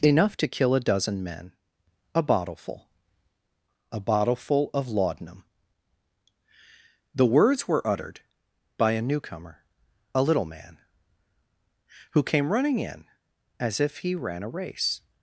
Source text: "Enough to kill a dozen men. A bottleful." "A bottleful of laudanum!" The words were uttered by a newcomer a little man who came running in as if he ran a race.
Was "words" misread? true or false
false